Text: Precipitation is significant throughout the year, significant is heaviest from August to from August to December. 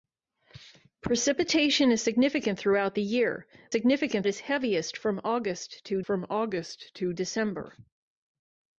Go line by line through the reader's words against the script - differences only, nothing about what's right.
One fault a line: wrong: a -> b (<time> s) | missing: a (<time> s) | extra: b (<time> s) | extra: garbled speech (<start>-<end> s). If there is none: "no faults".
no faults